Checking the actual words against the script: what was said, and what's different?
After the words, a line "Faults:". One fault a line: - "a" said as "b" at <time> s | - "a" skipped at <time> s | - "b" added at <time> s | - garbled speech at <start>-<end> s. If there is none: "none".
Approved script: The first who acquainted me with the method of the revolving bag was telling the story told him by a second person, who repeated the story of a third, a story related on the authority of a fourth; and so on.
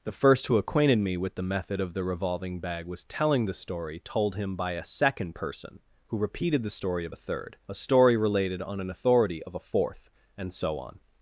The first who acquainted me with the method of the revolving bag was telling the story told him by a second person, who repeated the story of a third, a story related on an authority of a fourth; and so on.
Faults:
- "the" said as "an" at 8.8 s